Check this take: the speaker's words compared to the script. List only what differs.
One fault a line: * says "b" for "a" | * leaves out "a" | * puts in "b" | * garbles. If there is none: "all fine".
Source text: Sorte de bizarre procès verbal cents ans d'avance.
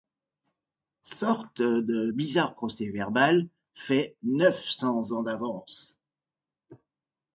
* puts in "fait neuf"